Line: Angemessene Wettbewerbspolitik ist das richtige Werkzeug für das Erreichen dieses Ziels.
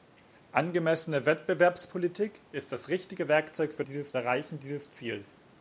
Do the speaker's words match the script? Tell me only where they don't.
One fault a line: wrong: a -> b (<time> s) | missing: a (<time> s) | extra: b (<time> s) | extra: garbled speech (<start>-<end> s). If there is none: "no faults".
wrong: das -> dieses (3.8 s)